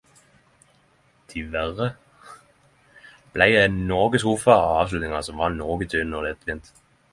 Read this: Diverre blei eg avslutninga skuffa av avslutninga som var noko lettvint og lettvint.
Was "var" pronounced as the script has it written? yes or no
yes